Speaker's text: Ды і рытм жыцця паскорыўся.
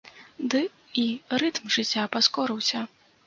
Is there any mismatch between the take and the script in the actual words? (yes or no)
no